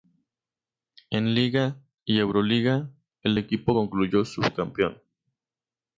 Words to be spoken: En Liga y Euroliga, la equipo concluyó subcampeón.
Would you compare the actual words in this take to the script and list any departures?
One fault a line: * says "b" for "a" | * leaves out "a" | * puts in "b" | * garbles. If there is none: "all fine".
* says "el" for "la"